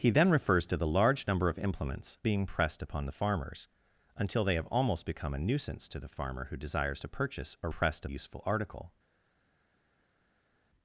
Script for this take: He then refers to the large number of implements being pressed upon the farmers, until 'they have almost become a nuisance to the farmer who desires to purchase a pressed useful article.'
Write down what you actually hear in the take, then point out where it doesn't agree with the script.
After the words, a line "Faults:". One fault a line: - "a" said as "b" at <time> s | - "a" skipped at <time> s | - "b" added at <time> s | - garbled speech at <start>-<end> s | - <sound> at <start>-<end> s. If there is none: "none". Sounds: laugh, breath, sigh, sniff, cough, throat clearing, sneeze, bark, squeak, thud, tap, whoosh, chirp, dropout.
He then refers to the large number of implements being pressed upon the farmers, until 'they have almost become a nuisance to the farmer who desires to purchase a pressed useful article.'
Faults:
none